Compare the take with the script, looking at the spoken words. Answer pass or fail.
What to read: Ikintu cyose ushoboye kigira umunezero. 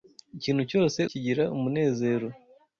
fail